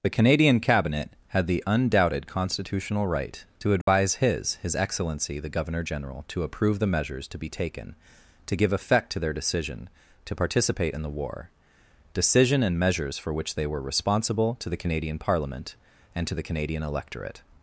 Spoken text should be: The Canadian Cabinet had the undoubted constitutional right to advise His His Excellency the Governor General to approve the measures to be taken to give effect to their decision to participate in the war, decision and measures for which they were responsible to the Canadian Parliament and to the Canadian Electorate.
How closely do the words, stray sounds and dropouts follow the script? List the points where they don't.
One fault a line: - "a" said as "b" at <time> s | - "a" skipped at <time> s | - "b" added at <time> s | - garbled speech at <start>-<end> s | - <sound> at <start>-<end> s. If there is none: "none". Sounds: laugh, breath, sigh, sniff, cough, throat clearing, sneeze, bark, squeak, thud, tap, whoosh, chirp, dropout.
- dropout at 3.8-3.9 s